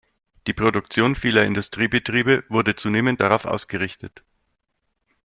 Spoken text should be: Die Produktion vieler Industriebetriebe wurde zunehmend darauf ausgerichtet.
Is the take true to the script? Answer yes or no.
yes